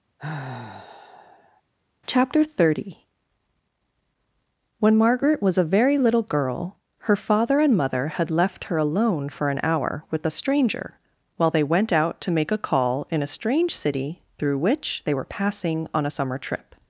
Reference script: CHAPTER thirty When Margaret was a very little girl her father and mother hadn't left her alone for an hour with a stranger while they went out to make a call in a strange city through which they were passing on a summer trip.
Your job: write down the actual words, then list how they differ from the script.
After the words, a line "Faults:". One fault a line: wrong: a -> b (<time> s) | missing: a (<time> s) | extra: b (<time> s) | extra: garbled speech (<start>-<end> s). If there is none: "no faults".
CHAPTER thirty When Margaret was a very little girl her father and mother had left her alone for an hour with a stranger while they went out to make a call in a strange city through which they were passing on a summer trip.
Faults:
wrong: hadn't -> had (8.1 s)